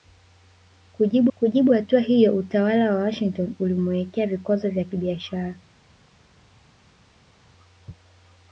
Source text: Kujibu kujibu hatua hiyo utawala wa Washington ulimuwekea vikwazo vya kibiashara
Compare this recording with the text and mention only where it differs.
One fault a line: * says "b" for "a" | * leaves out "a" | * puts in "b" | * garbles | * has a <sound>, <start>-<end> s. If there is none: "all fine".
all fine